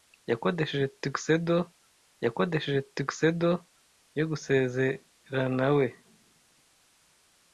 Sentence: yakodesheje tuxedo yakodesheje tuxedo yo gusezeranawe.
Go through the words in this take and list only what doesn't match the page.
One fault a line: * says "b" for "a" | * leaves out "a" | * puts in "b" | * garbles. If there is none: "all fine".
all fine